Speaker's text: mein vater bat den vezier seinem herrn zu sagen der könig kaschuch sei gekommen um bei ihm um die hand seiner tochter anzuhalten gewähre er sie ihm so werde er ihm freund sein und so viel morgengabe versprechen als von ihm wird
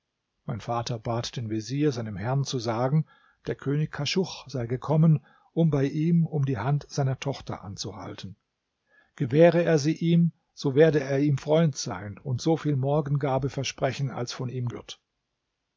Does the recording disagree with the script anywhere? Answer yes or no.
no